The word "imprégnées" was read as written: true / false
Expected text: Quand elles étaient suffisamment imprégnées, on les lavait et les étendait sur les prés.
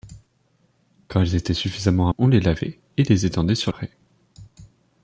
false